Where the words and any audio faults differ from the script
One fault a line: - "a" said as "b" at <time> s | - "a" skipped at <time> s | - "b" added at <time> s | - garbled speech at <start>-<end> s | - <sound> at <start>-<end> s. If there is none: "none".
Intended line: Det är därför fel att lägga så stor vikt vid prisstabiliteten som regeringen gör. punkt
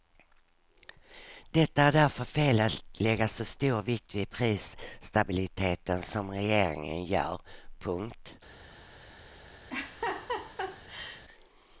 - laugh at 9.7-11.2 s